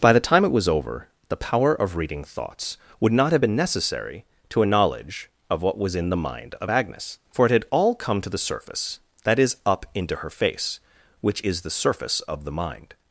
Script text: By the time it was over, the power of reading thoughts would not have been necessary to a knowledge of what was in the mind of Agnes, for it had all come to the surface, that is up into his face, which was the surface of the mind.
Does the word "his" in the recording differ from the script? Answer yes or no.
yes